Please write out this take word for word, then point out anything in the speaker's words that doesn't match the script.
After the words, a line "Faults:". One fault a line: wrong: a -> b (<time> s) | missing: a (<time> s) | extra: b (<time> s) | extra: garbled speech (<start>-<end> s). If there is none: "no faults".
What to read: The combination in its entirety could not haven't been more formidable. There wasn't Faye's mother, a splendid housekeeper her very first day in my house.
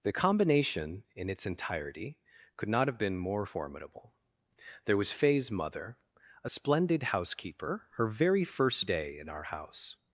The combination in its entirety could not have been more formidable. There was Faye's mother, a splendid housekeeper her very first day in our house.
Faults:
wrong: haven't -> have (2.9 s)
wrong: wasn't -> was (5.0 s)
wrong: my -> our (9.3 s)